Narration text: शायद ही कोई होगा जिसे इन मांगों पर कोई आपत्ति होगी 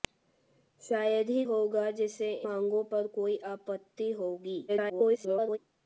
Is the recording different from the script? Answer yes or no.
yes